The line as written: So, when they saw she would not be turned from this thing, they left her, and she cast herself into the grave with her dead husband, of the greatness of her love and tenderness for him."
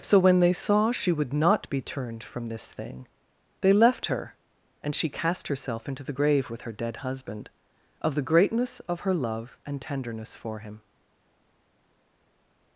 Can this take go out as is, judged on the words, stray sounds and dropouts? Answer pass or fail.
pass